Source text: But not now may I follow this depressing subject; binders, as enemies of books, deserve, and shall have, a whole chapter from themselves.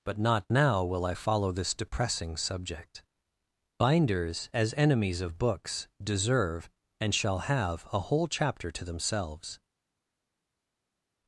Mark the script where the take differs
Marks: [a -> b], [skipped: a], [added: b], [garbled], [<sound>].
But not now [may -> will] I follow this depressing subject; binders, as enemies of books, deserve, and shall have, a whole chapter [from -> to] themselves.